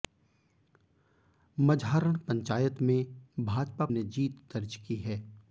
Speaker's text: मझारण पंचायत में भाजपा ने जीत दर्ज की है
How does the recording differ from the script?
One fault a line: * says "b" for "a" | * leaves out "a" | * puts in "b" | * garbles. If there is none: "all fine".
all fine